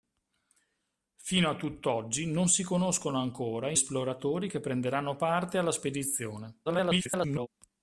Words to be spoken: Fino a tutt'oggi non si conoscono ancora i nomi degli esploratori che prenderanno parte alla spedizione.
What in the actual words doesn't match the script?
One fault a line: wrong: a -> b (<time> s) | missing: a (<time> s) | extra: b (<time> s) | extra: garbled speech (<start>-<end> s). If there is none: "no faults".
missing: nomi degli (3.8 s)
extra: garbled speech (6.7-7.5 s)